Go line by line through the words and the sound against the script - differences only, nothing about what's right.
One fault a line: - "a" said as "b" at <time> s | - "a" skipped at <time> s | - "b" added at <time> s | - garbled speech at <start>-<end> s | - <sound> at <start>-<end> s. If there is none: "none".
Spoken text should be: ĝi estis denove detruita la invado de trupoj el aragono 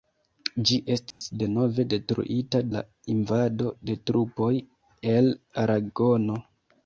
- dropout at 1.1-1.2 s